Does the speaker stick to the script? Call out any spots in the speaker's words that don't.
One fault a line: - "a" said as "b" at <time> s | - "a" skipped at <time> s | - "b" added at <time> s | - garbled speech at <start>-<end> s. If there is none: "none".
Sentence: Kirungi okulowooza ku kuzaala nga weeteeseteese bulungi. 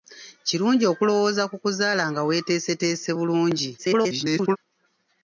- garbled speech at 3.8-4.6 s